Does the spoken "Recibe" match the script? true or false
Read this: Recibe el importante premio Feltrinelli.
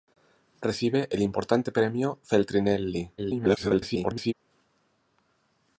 true